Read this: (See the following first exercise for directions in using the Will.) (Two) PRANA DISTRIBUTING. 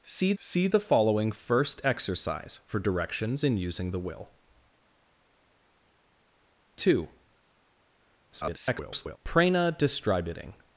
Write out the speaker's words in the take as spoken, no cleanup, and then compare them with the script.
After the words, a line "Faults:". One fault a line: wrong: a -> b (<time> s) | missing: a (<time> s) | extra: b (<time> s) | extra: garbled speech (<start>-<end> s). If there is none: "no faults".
(See see the following first exercise for directions in using the Will.) (Two) [garbled] PRANA DISTRIBUTING.
Faults:
extra: see (0.4 s)
extra: garbled speech (8.3-9.2 s)